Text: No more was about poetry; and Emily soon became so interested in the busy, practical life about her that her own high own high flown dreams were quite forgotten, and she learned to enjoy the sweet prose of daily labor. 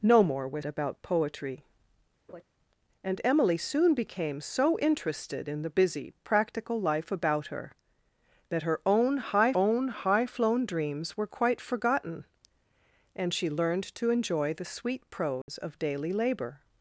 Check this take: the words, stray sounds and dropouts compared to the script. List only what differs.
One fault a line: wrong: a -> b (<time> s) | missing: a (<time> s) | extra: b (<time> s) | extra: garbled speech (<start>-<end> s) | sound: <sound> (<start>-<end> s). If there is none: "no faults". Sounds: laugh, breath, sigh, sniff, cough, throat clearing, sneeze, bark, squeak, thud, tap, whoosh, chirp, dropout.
sound: laugh (2.3-2.4 s)
sound: dropout (15.4-15.5 s)